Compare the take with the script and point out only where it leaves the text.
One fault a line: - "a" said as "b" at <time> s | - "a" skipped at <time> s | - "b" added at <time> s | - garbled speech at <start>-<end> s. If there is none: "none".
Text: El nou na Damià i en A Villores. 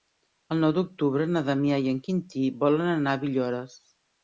- "d'octubre" added at 0.8 s
- "Quintí volen anar" added at 2.1 s